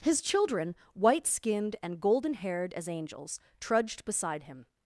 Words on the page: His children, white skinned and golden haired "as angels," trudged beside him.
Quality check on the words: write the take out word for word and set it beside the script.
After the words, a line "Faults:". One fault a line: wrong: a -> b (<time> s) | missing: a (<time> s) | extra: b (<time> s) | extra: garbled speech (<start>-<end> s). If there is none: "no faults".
His children, white skinned and golden haired "as angels," trudged beside him.
Faults:
no faults